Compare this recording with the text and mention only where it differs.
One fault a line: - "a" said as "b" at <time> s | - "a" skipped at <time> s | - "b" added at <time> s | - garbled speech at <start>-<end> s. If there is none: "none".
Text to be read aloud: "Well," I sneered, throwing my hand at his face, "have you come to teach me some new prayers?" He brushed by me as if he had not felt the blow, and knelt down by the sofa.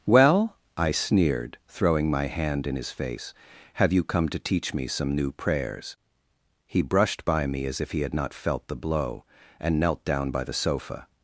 - "at" said as "in" at 2.6 s